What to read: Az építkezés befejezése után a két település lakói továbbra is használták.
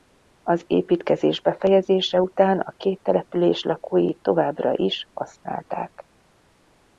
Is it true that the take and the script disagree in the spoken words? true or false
false